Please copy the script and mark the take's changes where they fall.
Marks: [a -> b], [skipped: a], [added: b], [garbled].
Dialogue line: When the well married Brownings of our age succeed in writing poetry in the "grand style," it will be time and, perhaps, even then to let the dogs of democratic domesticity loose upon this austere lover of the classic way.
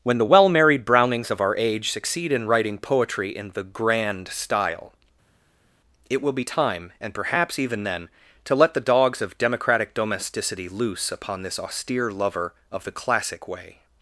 When the well married Brownings of our age succeed in writing poetry in the "grand style," it will be time and, perhaps, even then to let the dogs of democratic domesticity loose upon this austere lover of the classic way.